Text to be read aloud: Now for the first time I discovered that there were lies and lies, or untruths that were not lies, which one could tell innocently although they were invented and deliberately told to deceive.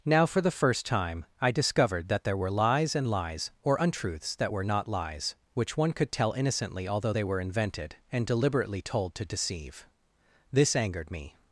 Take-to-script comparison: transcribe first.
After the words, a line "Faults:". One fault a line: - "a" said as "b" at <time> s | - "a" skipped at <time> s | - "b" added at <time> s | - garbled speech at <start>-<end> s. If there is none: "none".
Now for the first time I discovered that there were lies and lies, or untruths that were not lies, which one could tell innocently although they were invented and deliberately told to deceive. This angered me
Faults:
- "This angered me" added at 10.5 s